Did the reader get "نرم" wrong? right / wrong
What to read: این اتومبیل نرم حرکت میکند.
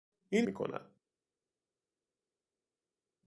wrong